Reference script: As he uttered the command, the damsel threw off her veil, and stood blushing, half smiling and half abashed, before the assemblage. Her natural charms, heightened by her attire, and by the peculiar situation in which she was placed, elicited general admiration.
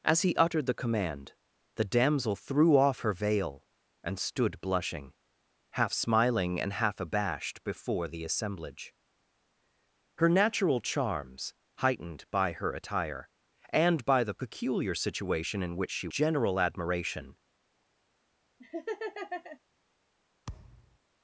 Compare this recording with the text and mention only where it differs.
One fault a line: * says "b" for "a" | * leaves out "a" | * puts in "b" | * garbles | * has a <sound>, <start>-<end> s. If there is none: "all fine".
* leaves out "was placed elicited"
* has a laugh, 18.6-19.6 s
* has a thud, 20.5-21.0 s